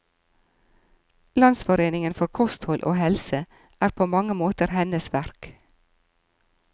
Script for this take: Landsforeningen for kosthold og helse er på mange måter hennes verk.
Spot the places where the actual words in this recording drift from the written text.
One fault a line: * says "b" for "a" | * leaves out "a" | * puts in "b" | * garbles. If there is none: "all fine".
all fine